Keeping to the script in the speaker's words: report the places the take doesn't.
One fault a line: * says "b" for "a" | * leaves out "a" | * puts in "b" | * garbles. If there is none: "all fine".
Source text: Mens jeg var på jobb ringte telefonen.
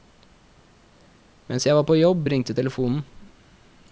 all fine